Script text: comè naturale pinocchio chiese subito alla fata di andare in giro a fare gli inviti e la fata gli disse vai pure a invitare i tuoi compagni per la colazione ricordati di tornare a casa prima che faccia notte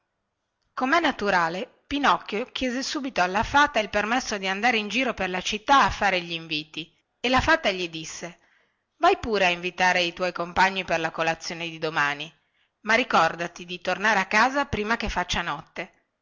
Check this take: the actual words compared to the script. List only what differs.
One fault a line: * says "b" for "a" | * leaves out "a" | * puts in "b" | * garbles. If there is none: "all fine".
* puts in "il permesso"
* puts in "per la città"
* puts in "di domani ma"